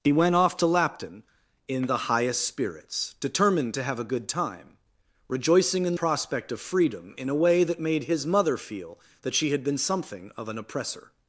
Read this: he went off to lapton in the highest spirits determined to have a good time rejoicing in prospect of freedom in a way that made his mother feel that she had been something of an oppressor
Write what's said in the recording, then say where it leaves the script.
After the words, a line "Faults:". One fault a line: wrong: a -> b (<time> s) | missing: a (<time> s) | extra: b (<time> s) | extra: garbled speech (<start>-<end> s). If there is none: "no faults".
he went off to lapton in the highest spirits determined to have a good time rejoicing in prospect of freedom in a way that made his mother feel that she had been something of an oppressor
Faults:
no faults